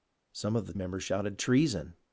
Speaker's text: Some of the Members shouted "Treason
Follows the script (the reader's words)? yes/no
yes